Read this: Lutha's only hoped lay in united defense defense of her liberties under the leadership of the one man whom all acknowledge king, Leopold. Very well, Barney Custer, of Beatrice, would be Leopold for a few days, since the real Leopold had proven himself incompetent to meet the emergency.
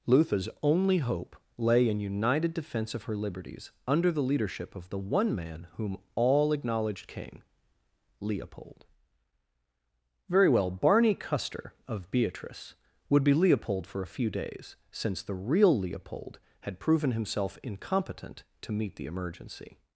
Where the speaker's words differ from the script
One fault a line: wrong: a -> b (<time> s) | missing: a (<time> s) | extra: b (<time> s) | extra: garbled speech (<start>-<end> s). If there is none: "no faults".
wrong: hoped -> hope (1.0 s)
missing: defense (3.0 s)
wrong: acknowledge -> acknowledged (6.5 s)